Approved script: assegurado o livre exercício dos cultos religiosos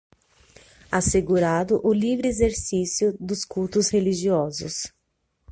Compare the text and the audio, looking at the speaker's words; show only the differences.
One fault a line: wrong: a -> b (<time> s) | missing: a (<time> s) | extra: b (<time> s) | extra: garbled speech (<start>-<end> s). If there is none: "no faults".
no faults